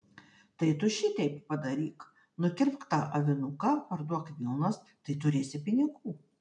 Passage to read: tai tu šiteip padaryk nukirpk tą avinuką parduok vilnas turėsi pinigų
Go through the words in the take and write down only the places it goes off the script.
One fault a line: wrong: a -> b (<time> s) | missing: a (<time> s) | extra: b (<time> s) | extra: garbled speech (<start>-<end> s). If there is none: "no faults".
extra: tai (4.9 s)